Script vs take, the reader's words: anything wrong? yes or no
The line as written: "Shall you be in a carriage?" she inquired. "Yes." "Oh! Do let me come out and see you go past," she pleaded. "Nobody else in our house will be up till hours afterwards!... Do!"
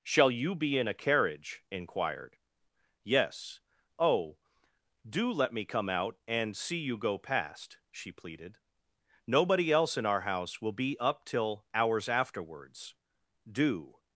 yes